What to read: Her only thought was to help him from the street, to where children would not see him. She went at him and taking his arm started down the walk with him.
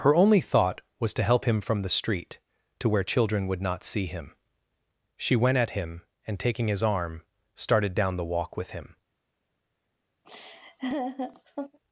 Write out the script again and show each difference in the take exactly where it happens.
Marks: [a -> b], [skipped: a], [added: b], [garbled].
Her only thought was to help him from the street, to where children would not see him. She went at him and taking his arm started down the walk with him.